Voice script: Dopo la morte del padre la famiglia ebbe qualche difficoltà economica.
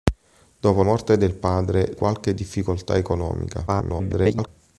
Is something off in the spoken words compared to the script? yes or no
yes